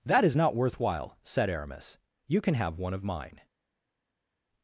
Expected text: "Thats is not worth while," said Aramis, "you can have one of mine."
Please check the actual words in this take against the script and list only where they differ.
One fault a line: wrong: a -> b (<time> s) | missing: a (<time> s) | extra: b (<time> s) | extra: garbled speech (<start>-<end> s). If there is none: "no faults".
wrong: Thats -> That (0.1 s)